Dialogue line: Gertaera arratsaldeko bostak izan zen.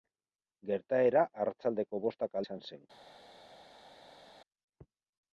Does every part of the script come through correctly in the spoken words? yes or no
yes